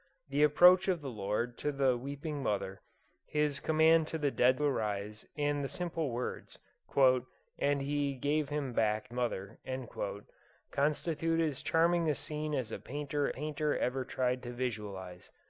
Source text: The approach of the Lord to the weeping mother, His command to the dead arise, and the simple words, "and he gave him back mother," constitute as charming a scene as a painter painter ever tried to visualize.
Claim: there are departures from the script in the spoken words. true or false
false